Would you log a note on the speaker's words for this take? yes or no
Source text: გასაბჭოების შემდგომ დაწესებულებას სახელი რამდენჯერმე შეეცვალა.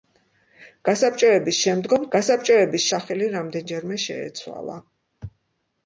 yes